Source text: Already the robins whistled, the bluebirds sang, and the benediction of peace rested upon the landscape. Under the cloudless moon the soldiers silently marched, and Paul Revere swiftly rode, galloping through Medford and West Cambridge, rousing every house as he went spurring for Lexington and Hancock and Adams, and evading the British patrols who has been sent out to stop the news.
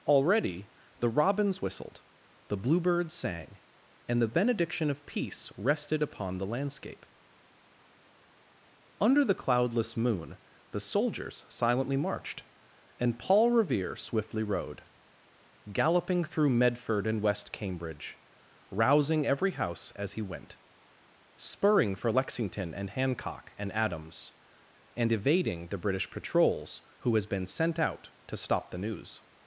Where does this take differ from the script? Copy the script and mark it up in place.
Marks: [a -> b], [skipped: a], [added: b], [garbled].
Already the robins whistled, the bluebirds sang, and the benediction of peace rested upon the landscape. Under the cloudless moon the soldiers silently marched, and Paul Revere swiftly rode, galloping through Medford and West Cambridge, rousing every house as he went spurring for Lexington and Hancock and Adams, and evading the British patrols who has been sent out to stop the news.